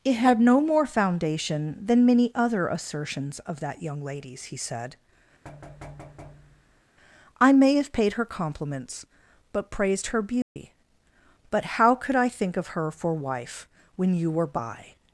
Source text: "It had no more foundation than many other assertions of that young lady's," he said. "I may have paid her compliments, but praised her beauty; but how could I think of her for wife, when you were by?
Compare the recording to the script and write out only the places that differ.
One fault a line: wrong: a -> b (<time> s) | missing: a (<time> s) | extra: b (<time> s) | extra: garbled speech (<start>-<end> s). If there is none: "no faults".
no faults